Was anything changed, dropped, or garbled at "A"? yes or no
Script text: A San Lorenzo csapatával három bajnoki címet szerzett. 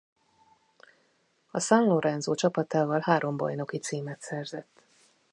no